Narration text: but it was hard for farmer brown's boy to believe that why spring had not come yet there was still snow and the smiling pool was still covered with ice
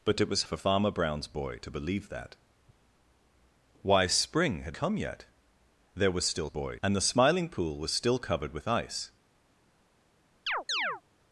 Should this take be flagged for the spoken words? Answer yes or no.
yes